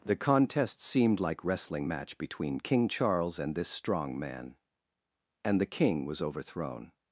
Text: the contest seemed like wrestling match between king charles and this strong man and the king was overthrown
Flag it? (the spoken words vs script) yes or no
no